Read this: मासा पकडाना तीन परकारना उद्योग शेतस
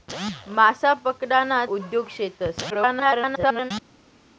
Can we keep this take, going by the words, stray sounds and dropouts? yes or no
no